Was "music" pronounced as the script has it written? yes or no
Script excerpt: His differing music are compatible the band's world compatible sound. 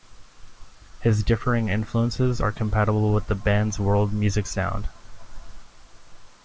no